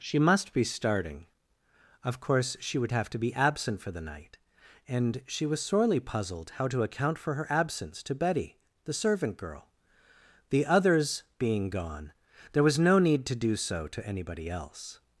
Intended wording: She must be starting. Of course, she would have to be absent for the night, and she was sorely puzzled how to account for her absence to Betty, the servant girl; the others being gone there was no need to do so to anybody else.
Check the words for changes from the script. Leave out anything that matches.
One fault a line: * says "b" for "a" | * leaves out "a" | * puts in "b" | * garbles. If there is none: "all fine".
all fine